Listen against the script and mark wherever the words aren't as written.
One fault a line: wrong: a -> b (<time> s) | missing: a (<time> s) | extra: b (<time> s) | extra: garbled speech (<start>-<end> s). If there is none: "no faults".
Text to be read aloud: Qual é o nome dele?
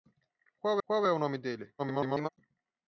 extra: qual (0.8 s)
extra: garbled speech (1.8-2.3 s)